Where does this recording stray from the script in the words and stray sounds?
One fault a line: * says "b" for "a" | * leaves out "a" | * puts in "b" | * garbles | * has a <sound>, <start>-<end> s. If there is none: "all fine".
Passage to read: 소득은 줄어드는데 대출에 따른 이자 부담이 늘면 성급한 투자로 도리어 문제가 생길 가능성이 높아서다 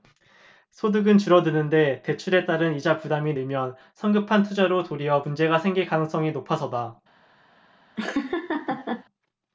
* has a laugh, 8.0-9.0 s